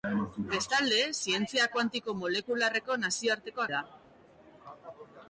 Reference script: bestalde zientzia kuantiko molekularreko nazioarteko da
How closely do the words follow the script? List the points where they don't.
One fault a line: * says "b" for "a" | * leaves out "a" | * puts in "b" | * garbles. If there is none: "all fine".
all fine